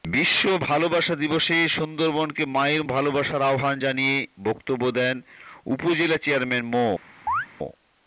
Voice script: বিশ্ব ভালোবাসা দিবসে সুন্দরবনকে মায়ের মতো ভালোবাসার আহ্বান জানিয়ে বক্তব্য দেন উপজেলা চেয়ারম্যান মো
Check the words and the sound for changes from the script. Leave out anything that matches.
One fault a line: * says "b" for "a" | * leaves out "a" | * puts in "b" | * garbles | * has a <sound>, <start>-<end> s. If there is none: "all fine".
* leaves out "মতো"
* has a chirp, 7.3-7.5 s